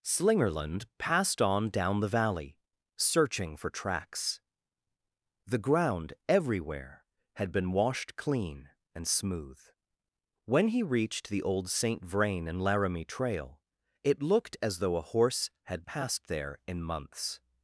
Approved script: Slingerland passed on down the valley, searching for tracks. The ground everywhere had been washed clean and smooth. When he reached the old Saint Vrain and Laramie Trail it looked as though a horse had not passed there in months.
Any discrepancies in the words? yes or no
yes